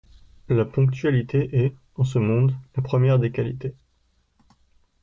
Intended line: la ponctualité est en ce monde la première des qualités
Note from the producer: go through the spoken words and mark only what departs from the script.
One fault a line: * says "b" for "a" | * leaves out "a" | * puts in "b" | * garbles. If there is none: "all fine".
all fine